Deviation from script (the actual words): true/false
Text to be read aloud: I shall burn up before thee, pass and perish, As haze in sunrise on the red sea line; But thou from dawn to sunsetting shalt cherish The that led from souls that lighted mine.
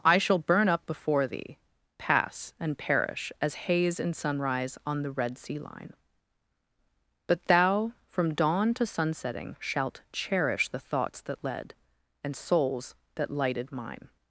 true